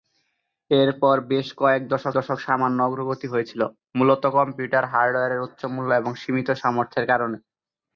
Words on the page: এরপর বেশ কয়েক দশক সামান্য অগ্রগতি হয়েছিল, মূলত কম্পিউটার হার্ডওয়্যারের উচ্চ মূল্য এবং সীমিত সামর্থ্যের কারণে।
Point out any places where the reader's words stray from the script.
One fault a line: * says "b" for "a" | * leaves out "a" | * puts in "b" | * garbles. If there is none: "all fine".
* puts in "দশক"